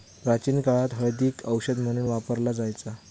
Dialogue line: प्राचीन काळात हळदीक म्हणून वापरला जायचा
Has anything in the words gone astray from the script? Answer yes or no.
yes